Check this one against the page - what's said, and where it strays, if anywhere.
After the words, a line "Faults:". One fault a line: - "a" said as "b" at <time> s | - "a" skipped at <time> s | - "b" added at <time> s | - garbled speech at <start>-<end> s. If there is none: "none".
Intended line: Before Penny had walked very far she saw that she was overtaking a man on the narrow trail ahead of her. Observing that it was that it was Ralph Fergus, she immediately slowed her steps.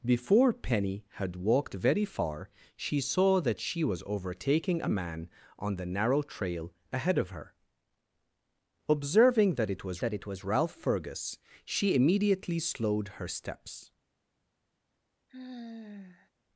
Before Penny had walked very far she saw that she was overtaking a man on the narrow trail ahead of her. Observing that it was that it was Ralph Fergus, she immediately slowed her steps.
Faults:
none